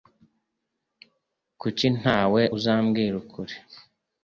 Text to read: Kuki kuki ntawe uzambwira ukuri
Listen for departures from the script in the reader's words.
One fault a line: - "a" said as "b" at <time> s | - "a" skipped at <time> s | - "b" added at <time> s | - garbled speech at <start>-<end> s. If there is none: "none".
- "kuki" skipped at 1.9 s